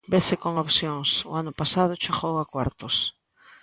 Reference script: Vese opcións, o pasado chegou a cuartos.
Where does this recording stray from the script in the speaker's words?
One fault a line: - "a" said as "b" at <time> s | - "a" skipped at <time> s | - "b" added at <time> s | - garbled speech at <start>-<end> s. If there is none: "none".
- "con" added at 0.4 s
- "ano" added at 1.4 s